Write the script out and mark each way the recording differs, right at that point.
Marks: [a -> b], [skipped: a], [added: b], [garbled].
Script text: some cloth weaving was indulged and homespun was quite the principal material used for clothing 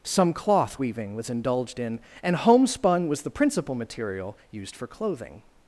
some cloth weaving was indulged [added: in] and homespun was [skipped: quite] the principal material used for clothing